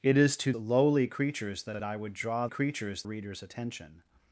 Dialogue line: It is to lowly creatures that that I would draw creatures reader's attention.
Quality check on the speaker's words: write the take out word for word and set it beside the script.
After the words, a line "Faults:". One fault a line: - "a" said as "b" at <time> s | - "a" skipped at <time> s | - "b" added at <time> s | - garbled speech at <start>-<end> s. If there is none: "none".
It is to lowly creatures that that I would draw creatures reader's attention.
Faults:
none